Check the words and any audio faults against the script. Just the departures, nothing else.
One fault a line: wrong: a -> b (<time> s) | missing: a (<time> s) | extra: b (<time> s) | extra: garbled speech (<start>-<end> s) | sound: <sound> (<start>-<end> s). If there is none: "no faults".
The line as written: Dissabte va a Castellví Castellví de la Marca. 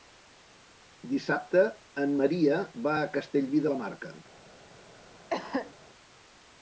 extra: en Maria (2.0 s)
missing: Castellví (3.7 s)
sound: cough (5.3-5.7 s)